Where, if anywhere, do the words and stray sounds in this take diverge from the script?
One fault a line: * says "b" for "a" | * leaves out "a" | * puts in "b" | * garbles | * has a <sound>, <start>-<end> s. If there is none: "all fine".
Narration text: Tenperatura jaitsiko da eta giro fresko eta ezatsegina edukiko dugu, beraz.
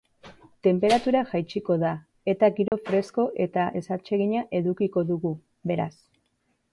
* has a dropout, 2.7-2.7 s